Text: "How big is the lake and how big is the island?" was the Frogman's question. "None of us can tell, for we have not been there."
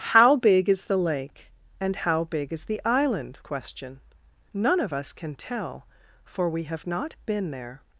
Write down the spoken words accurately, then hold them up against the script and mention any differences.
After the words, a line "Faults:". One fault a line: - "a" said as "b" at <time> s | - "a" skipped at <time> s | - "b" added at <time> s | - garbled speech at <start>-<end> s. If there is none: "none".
"How big is the lake and how big is the island?" question. "None of us can tell, for we have not been there."
Faults:
- "was the Frogman's" skipped at 3.4 s